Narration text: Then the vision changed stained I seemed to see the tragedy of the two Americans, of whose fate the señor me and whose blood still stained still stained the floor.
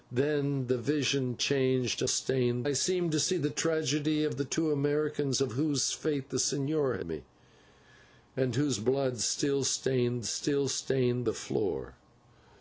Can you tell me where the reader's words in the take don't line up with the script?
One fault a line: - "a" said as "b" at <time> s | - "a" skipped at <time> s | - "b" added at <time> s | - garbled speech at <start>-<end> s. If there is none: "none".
none